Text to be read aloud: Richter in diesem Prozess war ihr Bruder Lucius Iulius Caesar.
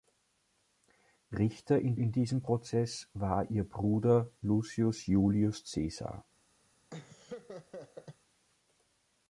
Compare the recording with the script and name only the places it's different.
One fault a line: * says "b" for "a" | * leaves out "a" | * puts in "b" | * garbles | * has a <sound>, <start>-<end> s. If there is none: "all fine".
* puts in "in"
* has a laugh, 6.9-8.2 s